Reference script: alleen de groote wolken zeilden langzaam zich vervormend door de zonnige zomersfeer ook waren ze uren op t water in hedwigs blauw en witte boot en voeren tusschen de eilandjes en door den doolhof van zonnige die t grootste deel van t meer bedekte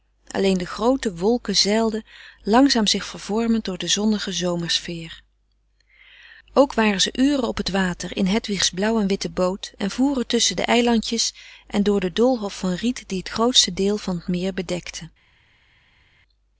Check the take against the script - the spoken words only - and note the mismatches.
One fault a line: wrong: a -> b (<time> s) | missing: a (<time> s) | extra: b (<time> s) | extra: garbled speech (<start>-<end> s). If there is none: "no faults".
wrong: zonnige -> riet (12.7 s)